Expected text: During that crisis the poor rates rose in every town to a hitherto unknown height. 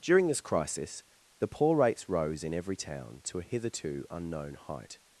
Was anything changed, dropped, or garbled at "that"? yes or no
yes